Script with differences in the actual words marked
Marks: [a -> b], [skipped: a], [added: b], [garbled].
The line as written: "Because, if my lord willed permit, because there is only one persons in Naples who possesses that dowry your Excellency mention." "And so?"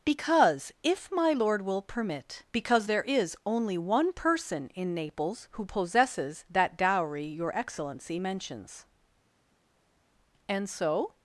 "Because, if my lord [willed -> will] permit, because there is only one [persons -> person] in Naples who possesses that dowry your Excellency [mention." -> mentions] "And so?"